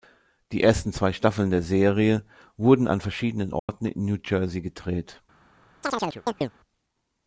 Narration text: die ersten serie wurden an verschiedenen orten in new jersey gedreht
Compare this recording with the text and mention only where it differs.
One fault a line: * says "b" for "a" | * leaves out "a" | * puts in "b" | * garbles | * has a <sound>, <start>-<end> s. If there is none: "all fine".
* puts in "zwei staffeln der"
* has a dropout, 3.6-3.7 s
* has a chirp, 5.8-6.5 s